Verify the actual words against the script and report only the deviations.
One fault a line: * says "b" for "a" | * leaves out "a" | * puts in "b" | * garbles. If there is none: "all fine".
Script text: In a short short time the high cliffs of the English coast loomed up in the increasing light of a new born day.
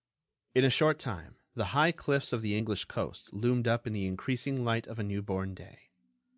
* leaves out "short"